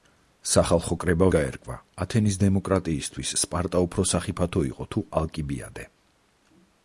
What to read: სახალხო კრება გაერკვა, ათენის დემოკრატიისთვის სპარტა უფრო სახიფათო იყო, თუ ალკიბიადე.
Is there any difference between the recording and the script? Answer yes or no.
no